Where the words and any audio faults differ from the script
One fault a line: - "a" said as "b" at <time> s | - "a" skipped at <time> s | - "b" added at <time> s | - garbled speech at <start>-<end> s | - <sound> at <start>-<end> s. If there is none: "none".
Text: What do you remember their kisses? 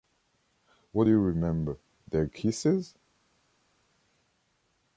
none